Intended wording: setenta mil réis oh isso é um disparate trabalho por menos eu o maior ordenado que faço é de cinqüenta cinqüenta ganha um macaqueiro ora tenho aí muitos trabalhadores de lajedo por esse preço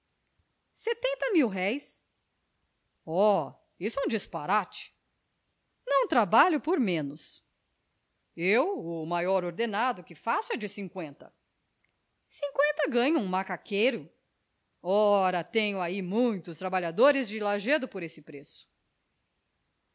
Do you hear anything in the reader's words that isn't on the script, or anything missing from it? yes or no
yes